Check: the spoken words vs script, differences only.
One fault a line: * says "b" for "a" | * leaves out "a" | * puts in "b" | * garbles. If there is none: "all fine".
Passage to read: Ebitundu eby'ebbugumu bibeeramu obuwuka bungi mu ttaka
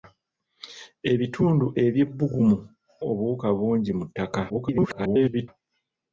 * leaves out "bibeeramu"
* garbles